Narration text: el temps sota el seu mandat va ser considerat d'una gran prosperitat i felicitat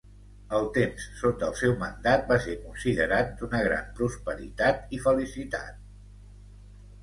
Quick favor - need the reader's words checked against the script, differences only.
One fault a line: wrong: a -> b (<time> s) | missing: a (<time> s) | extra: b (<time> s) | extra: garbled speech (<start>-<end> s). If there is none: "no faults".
no faults